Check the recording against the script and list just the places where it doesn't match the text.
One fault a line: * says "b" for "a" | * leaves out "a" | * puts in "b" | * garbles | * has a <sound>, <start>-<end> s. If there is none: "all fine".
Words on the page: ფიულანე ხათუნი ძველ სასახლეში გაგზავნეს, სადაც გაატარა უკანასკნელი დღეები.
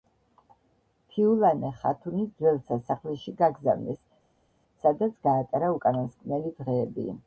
all fine